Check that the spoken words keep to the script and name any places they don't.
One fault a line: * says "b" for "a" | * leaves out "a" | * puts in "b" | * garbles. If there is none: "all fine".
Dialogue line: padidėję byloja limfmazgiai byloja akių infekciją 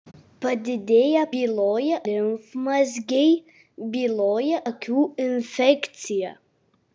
all fine